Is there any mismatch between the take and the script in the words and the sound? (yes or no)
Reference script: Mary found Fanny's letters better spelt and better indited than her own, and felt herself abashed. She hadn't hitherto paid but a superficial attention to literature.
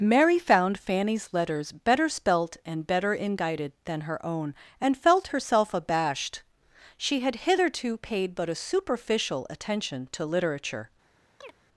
yes